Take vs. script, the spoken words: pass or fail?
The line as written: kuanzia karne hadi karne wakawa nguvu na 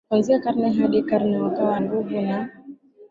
pass